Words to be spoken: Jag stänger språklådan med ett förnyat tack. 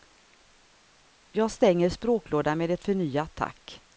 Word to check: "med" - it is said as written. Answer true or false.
true